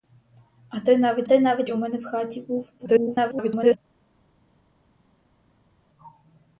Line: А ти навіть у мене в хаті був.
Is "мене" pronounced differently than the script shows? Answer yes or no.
no